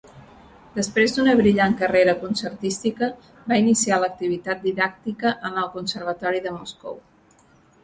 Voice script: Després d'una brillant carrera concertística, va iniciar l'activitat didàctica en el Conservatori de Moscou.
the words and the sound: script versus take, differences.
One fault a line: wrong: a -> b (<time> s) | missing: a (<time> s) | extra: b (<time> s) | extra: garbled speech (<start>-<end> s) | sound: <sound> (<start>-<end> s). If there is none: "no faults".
no faults